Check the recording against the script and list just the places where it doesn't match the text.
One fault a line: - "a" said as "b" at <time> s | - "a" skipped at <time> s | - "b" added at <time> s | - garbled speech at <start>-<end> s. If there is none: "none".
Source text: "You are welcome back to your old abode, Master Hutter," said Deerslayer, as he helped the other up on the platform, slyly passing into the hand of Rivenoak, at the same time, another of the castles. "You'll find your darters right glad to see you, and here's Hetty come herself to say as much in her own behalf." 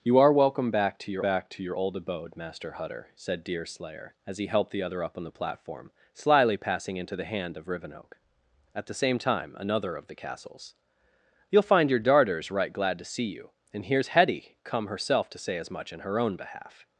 - "back to your" added at 1.2 s